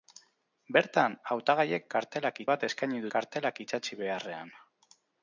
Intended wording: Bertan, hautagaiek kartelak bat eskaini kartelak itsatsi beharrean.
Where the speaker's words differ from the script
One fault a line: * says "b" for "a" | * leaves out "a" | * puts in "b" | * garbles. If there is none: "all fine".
all fine